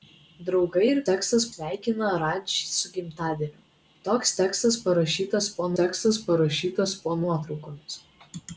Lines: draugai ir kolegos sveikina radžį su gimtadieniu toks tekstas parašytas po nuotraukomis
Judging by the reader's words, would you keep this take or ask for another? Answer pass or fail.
fail